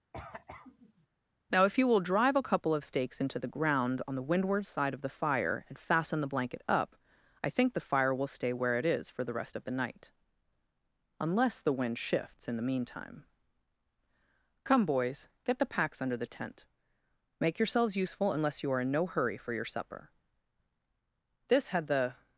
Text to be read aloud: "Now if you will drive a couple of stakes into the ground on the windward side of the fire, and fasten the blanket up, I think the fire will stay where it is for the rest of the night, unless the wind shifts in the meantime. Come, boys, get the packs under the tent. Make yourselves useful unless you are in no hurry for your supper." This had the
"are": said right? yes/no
yes